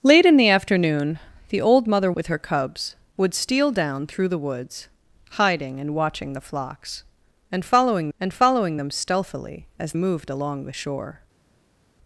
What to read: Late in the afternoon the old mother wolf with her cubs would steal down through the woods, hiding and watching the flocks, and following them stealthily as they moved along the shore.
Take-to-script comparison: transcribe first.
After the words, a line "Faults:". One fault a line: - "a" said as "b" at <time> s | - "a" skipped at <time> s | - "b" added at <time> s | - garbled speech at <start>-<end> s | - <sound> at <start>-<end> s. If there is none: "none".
Late in the afternoon the old mother with her cubs would steal down through the woods, hiding and watching the flocks, and following and following them stealthily as moved along the shore.
Faults:
- "wolf" skipped at 2.1 s
- "and following" added at 8.2 s
- "they" skipped at 9.9 s